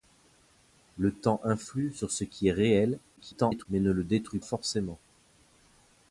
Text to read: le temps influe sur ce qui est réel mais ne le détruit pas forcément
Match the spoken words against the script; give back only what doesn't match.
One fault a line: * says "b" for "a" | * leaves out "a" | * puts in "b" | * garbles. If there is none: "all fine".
* garbles
* leaves out "pas"